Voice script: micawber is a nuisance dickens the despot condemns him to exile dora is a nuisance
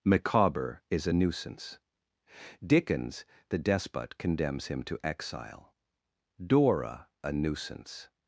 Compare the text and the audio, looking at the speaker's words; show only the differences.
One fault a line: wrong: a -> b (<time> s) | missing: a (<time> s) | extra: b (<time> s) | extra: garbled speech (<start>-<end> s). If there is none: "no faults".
missing: is (7.1 s)